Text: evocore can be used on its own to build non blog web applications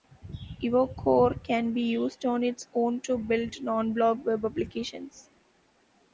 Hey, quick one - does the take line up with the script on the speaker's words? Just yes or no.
yes